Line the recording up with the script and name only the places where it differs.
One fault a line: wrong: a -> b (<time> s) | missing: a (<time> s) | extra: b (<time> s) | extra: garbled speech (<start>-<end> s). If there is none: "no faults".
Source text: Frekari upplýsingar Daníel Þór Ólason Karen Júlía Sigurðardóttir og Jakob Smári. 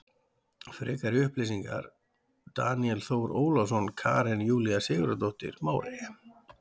missing: og Jakob (5.6 s)